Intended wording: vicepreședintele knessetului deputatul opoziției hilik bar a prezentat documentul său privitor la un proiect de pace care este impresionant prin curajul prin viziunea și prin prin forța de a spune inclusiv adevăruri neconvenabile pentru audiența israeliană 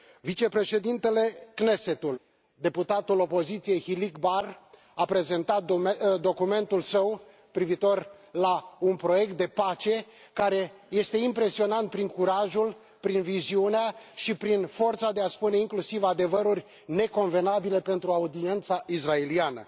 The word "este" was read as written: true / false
true